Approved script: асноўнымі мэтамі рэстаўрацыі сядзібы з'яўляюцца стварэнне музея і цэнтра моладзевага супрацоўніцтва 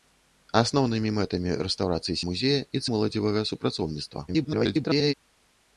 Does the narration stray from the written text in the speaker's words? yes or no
yes